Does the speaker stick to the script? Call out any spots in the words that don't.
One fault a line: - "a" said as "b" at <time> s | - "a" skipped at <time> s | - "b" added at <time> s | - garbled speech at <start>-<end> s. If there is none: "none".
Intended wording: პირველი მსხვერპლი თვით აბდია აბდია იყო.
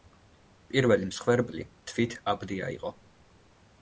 - "აბდია" skipped at 2.7 s